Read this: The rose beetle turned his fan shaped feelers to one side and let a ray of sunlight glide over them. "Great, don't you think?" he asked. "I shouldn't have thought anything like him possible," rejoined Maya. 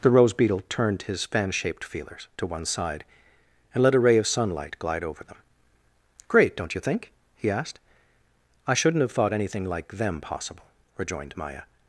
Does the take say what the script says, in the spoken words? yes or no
no